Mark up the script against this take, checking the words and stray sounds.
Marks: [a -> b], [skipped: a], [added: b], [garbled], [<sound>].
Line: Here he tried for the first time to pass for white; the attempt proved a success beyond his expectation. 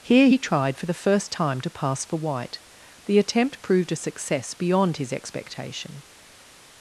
Here he tried for the first time to pass for white; the attempt proved a success beyond his expectation.